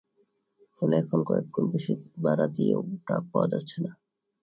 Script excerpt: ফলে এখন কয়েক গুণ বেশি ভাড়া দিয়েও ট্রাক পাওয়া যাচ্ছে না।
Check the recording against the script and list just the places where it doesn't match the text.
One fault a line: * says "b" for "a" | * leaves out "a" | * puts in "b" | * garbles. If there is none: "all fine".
all fine